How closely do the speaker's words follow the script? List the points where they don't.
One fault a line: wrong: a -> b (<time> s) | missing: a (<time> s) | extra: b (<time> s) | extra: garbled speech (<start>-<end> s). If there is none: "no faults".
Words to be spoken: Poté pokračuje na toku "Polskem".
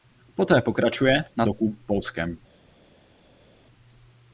no faults